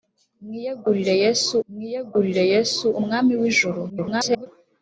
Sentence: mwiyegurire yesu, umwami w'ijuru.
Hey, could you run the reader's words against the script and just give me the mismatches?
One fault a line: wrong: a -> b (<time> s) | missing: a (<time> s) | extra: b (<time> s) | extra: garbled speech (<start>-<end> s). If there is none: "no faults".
extra: mwiyegurire yesu (1.7 s)
extra: garbled speech (3.9-4.5 s)